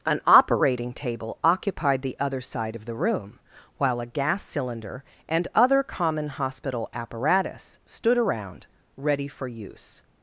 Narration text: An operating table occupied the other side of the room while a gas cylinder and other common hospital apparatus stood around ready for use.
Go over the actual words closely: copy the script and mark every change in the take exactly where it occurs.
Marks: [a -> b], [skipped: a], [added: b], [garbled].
An operating table occupied the other side of the room while a gas cylinder and other common hospital apparatus stood around ready for use.